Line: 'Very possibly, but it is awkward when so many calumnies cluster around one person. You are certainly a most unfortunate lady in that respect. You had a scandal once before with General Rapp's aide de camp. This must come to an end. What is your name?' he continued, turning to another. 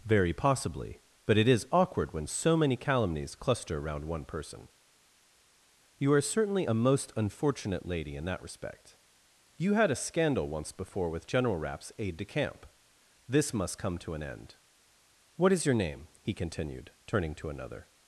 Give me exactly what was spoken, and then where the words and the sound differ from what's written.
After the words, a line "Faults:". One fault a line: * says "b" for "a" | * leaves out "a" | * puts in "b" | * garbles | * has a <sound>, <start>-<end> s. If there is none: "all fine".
'Very possibly, but it is awkward when so many calumnies cluster around one person. You are certainly a most unfortunate lady in that respect. You had a scandal once before with General Rapp's aide de camp. This must come to an end. What is your name?' he continued, turning to another.
Faults:
all fine